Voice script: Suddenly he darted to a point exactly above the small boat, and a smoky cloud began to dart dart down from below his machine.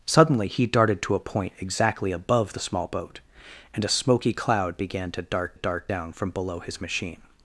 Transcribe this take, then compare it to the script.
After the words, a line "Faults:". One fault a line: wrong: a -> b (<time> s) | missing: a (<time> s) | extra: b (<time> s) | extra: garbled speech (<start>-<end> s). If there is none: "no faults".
Suddenly he darted to a point exactly above the small boat, and a smoky cloud began to dart dart down from below his machine.
Faults:
no faults